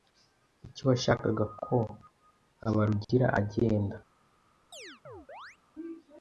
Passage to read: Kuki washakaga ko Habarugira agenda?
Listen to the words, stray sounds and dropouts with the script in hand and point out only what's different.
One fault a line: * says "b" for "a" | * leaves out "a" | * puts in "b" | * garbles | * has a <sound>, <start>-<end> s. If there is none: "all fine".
* has a chirp, 4.7-5.6 s